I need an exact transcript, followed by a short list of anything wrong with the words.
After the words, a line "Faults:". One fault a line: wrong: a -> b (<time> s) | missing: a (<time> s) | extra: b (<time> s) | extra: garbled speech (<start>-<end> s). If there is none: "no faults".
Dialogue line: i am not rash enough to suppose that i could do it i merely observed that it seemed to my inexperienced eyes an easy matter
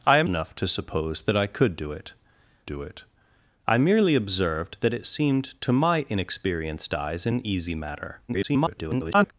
i am enough to suppose that i could do it do it i merely observed that it seemed to my inexperienced eyes an easy matter [garbled]
Faults:
missing: not rash (0.3 s)
extra: do it (2.7 s)
extra: garbled speech (8.3-9.3 s)